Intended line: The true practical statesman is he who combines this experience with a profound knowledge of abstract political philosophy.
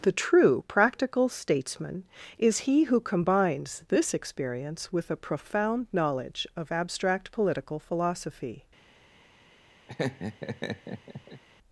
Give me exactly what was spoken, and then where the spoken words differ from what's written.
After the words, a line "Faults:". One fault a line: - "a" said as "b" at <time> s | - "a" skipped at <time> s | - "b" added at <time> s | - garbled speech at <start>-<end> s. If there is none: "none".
The true practical statesman is he who combines this experience with a profound knowledge of abstract political philosophy.
Faults:
none